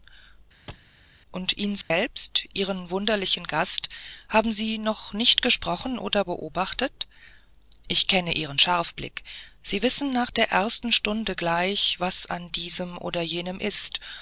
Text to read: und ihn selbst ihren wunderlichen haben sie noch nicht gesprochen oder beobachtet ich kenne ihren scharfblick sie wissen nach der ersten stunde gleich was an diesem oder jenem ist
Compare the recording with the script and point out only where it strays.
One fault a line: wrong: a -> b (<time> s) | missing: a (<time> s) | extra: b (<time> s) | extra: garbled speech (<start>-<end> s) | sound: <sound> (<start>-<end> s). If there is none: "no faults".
sound: thud (0.7-0.9 s)
sound: dropout (1.8-1.9 s)
extra: gast (3.5 s)